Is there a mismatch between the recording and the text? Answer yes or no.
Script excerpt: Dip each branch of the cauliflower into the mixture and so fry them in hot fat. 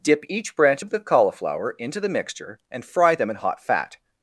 yes